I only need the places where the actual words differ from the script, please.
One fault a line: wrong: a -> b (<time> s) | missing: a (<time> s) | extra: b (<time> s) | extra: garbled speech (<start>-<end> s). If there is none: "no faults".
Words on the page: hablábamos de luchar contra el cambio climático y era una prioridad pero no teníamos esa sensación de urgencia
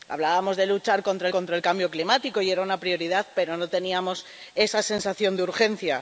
extra: contra (1.3 s)